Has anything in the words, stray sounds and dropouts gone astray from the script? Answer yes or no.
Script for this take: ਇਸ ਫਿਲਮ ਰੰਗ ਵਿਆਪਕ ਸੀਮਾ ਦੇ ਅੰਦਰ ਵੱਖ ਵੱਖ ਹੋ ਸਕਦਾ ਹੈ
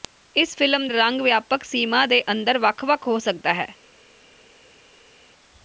no